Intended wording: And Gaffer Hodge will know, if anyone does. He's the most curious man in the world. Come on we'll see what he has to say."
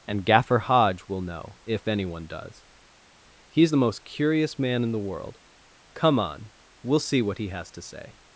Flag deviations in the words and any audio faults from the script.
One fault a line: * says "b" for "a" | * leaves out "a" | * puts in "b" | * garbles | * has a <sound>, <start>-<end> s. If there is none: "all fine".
all fine